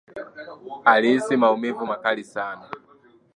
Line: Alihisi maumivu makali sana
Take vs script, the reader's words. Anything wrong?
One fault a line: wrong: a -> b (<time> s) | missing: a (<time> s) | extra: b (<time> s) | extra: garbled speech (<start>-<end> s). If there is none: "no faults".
no faults